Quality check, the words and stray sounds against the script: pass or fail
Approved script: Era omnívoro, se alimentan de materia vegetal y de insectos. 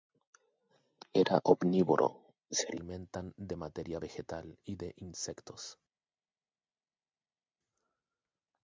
pass